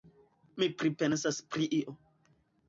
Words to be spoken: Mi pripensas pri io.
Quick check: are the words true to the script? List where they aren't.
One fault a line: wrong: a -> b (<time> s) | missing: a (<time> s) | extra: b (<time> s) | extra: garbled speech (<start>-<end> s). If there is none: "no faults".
no faults